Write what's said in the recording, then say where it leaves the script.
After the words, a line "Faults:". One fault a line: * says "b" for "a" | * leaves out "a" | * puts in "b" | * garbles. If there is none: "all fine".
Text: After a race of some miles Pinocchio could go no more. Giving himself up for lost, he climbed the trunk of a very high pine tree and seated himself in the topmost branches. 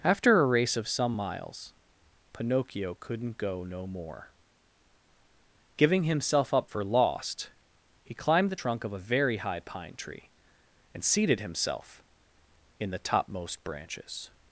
After a race of some miles Pinocchio couldn't go no more. Giving himself up for lost, he climbed the trunk of a very high pine tree and seated himself in the topmost branches.
Faults:
* says "couldn't" for "could"